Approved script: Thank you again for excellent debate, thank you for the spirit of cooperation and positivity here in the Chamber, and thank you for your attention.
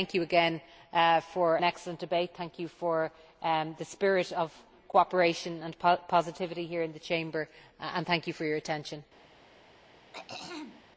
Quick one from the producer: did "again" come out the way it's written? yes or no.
yes